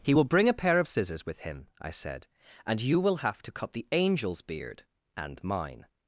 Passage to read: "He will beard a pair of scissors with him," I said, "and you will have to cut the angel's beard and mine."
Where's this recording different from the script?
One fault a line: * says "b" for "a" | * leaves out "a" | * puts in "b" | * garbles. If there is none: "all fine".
* says "bring" for "beard"